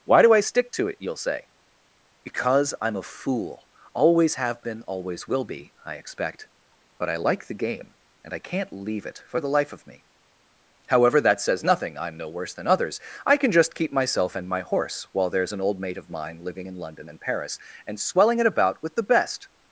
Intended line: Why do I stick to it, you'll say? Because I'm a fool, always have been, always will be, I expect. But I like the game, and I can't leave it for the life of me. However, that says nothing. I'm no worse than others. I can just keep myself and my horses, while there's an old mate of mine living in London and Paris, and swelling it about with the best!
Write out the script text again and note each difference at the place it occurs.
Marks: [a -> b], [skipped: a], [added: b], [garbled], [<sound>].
Why do I stick to it, you'll say? Because I'm a fool, always have been, always will be, I expect. But I like the game, and I can't leave it for the life of me. However, that says nothing. I'm no worse than others. I can just keep myself and my [horses, -> horse] while there's an old mate of mine living in London and Paris, and swelling it about with the best!